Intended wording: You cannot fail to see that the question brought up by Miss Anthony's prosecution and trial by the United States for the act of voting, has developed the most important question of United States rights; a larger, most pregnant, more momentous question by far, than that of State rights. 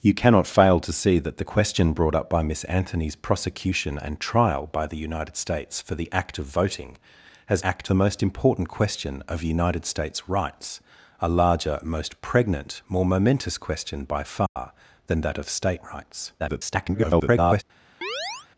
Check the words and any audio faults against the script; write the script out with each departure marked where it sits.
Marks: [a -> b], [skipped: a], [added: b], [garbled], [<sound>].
You cannot fail to see that the question brought up by Miss Anthony's prosecution and trial by the United States for the act of voting, has [developed -> act] the most important question of United States rights; a larger, most pregnant, more momentous question by far, [dropout] than that of State rights. [garbled] [chirp]